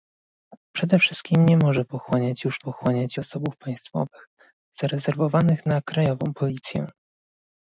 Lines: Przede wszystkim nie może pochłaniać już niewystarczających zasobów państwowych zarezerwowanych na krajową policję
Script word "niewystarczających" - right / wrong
wrong